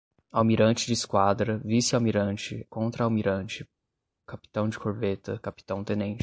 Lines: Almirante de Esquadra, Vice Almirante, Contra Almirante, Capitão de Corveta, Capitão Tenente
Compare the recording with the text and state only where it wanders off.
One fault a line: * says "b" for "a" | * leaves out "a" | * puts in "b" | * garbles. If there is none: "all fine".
all fine